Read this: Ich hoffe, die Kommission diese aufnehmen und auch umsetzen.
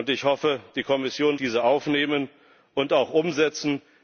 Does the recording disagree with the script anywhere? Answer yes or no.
no